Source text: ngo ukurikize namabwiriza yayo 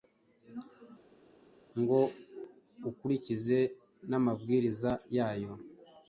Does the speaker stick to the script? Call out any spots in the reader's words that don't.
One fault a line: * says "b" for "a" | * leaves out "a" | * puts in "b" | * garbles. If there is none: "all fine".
all fine